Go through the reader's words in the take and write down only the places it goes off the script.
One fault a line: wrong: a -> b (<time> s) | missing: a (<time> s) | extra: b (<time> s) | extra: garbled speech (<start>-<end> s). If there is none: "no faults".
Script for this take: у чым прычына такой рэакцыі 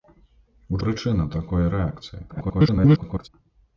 missing: чым (0.8 s)
extra: garbled speech (2.3-3.3 s)